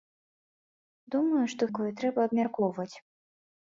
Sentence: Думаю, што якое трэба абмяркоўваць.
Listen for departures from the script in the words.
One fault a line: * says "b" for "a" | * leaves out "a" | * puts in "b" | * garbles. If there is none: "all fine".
all fine